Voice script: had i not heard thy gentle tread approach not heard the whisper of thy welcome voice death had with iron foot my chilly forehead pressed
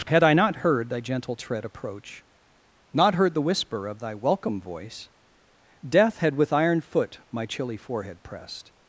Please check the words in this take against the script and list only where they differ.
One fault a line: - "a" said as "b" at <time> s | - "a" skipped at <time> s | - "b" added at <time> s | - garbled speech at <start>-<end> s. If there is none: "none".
none